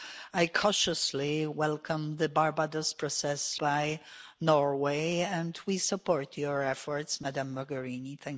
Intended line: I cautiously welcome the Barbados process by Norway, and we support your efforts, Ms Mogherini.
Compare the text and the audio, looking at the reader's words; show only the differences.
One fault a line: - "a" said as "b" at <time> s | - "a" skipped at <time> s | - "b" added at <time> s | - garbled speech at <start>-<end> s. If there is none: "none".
none